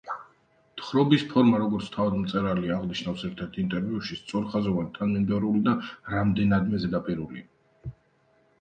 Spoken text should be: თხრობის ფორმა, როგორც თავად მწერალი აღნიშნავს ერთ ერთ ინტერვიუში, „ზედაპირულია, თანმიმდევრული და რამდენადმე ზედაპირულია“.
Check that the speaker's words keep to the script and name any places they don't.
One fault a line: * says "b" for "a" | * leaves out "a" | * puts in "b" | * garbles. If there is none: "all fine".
* says "სწორხაზოვანი" for "ზედაპირულია"